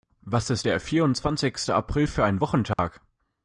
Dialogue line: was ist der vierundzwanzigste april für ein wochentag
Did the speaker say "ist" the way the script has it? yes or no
yes